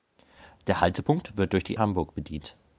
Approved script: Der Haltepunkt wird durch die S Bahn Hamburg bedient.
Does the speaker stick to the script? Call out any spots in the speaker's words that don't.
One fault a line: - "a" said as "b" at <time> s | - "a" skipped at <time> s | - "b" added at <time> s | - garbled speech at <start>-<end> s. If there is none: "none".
- "S Bahn" skipped at 1.8 s